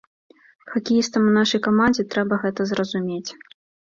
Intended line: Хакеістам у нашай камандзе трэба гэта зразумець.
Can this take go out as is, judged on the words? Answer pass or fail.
pass